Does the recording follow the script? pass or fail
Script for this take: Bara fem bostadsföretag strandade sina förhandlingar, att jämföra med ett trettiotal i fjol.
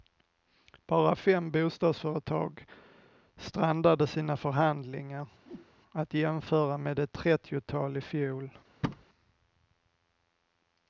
pass